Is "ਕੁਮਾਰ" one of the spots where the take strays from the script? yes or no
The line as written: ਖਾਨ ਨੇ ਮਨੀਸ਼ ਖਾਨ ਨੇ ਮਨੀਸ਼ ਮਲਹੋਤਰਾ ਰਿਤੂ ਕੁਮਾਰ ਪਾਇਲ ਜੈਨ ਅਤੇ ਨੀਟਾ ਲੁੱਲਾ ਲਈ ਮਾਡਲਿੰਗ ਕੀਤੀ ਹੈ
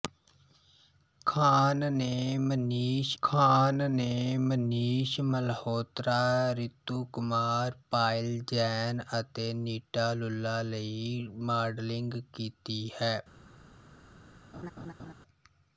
no